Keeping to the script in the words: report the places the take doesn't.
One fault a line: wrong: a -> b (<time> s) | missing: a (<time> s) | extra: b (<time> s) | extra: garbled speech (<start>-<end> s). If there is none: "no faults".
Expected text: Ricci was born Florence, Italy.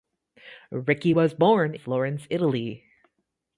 no faults